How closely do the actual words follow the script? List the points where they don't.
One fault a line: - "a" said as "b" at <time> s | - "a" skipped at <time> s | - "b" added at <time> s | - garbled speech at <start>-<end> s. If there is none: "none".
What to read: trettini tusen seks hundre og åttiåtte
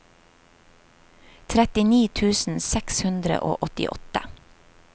none